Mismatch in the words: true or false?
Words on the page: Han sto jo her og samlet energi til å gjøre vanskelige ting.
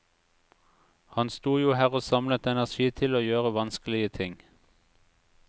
false